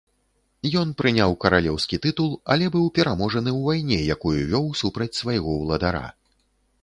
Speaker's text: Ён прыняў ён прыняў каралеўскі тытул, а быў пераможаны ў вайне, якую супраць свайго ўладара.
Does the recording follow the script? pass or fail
fail